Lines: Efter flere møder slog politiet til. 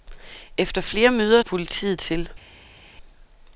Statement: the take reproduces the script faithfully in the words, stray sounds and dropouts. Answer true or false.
false